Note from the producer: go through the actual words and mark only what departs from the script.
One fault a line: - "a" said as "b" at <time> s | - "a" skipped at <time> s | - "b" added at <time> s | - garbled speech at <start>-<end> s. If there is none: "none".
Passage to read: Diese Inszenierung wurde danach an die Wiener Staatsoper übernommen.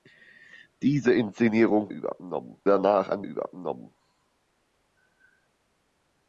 - "wurde" said as "übernommen" at 1.9 s
- "die Wiener Staatsoper" skipped at 3.2 s